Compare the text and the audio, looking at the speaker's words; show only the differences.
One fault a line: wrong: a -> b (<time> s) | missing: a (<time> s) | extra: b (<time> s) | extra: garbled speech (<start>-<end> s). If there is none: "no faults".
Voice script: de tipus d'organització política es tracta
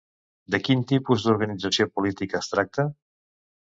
extra: quin (0.7 s)